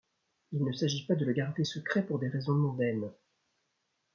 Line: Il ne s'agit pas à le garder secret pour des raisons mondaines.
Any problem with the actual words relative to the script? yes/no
yes